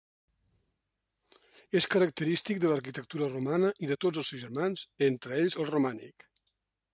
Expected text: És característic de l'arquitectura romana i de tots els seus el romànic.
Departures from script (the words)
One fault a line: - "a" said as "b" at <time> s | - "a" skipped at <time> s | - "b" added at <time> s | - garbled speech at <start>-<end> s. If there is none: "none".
- "germans entre ells" added at 4.4 s